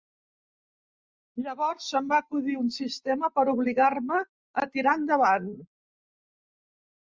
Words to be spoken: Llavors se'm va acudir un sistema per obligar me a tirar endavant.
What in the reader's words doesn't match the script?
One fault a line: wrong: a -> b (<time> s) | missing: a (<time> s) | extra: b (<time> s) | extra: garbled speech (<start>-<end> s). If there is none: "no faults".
no faults